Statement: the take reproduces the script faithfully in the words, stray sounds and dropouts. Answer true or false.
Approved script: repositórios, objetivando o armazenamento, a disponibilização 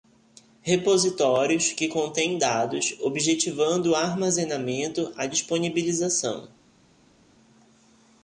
false